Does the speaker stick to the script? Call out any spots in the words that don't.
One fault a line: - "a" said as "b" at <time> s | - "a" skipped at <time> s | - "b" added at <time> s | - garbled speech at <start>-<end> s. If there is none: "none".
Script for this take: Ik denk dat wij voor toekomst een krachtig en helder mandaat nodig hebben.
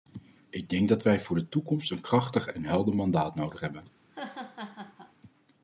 - "de" added at 1.4 s